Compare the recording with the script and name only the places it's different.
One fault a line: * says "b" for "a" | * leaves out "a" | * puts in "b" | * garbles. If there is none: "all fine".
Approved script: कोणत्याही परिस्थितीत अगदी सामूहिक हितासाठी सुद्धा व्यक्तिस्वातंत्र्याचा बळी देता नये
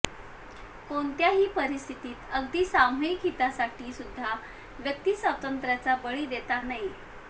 all fine